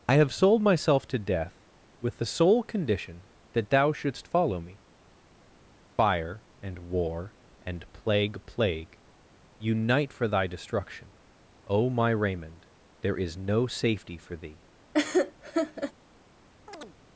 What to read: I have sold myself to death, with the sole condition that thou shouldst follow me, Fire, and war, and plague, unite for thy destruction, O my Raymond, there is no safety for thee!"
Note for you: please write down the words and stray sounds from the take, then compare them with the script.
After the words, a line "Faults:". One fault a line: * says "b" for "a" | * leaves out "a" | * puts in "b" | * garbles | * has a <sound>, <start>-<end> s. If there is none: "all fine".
I have sold myself to death, with the sole condition that thou shouldst follow me, Fire, and war, and plague plague, unite for thy destruction, O my Raymond, there is no safety for thee!"
Faults:
* puts in "plague"
* has a laugh, 14.9-15.9 s
* has a chirp, 16.7-17.0 s